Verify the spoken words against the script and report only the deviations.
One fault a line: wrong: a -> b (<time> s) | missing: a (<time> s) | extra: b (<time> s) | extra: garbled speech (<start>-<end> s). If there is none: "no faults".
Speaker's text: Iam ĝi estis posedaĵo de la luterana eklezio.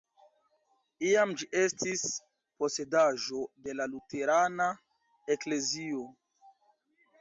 no faults